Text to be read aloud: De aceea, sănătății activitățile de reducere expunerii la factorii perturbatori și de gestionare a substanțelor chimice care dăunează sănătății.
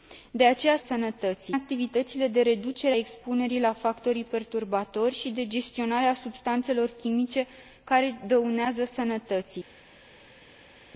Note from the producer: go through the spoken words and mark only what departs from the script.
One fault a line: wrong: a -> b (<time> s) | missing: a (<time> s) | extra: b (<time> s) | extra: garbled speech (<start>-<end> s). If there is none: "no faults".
no faults